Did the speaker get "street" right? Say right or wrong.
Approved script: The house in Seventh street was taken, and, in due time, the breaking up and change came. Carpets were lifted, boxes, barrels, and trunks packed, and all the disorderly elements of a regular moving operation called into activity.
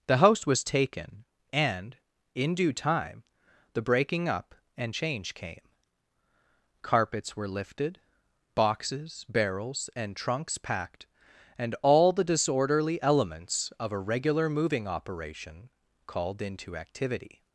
wrong